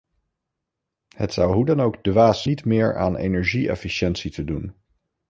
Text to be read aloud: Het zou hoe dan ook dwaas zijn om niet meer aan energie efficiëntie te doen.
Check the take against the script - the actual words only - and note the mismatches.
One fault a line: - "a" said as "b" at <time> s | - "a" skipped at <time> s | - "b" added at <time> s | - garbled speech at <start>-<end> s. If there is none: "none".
- "zijn om" skipped at 2.4 s